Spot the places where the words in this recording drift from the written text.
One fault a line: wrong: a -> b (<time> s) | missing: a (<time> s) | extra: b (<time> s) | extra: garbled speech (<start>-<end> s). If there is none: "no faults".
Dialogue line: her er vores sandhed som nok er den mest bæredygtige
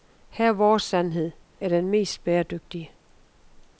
missing: som nok (1.3 s)